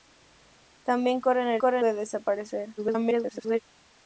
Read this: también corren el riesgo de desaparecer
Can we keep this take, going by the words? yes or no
no